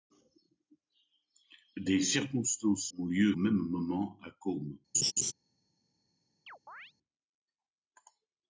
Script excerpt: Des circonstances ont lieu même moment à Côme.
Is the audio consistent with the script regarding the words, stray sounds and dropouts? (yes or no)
no